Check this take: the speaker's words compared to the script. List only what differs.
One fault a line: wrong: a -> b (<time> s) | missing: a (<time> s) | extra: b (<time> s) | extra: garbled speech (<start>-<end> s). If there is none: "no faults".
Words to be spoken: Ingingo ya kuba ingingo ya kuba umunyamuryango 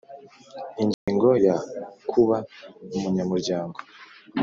missing: ingingo ya kuba (2.4 s)